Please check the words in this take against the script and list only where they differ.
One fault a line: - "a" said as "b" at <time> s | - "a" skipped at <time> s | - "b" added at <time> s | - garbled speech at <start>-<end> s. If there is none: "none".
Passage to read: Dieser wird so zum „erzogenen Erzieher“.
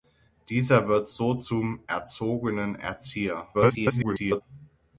- garbled speech at 3.5-4.4 s